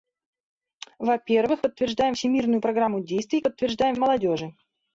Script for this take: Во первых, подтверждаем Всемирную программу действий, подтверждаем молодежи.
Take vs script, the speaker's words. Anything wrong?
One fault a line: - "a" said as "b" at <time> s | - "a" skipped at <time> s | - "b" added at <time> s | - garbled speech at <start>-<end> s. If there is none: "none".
none